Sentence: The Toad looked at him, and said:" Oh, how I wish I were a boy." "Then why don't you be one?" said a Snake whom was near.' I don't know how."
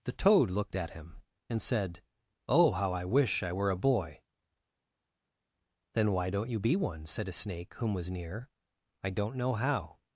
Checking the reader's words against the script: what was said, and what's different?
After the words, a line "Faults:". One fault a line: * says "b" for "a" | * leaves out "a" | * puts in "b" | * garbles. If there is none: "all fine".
The Toad looked at him, and said:" Oh, how I wish I were a boy." "Then why don't you be one?" said a Snake whom was near.' I don't know how."
Faults:
all fine